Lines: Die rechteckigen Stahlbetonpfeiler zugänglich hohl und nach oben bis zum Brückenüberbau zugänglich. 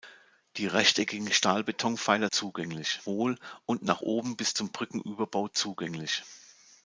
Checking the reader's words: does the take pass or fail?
pass